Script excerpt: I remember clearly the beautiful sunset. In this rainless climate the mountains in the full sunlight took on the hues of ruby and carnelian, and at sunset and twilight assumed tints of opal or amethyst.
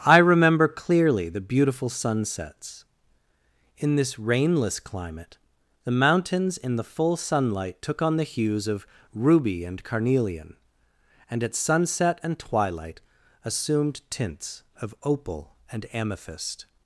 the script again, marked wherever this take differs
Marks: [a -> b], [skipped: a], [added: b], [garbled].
I remember clearly the beautiful [sunset. -> sunsets] In this rainless climate the mountains in the full sunlight took on the hues of ruby and carnelian, and at sunset and twilight assumed tints of opal [or -> and] amethyst.